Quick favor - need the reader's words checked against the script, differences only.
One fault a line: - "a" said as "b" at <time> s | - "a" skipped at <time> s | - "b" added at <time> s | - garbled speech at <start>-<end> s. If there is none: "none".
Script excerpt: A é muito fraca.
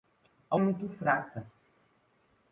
none